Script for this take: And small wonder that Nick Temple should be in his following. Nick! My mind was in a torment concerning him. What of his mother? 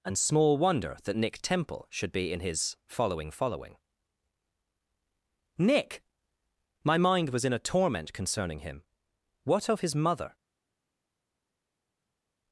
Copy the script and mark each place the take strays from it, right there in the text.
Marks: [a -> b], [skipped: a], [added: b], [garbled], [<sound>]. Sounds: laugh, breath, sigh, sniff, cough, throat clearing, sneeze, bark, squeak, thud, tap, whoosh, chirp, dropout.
And small wonder that Nick Temple should be in his following. [added: following] Nick! My mind was in a torment concerning him. What of his mother?